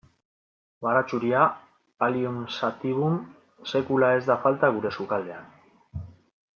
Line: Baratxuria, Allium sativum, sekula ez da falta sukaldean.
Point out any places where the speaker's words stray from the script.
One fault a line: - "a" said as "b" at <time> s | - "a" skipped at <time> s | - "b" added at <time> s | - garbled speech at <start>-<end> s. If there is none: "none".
- "gure" added at 4.8 s